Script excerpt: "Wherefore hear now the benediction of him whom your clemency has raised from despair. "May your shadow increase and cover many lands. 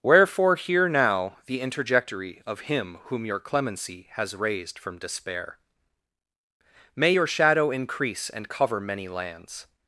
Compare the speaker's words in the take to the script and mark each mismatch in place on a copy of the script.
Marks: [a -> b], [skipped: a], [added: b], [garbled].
"Wherefore hear now the [benediction -> interjectory] of him whom your clemency has raised from despair. "May your shadow increase and cover many lands.